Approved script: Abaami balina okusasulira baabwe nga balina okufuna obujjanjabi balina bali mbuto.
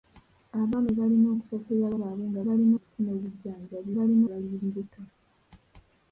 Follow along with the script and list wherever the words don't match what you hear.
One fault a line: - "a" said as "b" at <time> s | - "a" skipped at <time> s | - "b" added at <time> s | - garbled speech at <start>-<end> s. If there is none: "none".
none